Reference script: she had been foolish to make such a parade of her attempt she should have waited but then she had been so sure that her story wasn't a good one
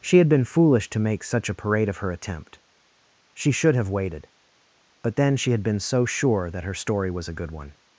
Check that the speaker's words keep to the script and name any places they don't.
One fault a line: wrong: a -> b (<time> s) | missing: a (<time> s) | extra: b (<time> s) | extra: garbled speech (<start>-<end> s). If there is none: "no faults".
wrong: wasn't -> was (7.1 s)